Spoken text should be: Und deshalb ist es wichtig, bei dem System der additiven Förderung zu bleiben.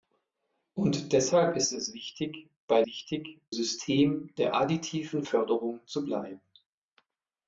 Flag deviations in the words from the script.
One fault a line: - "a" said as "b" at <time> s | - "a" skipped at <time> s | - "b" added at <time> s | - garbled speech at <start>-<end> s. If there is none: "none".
- "dem" said as "wichtig" at 2.8 s